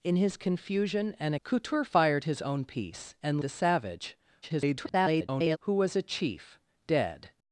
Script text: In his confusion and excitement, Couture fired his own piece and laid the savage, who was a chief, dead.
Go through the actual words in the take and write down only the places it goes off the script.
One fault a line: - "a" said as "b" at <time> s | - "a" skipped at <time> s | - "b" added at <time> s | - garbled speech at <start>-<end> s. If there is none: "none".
- "excitement" skipped at 1.4 s
- "laid" skipped at 3.4 s
- garbled speech at 4.4-5.6 s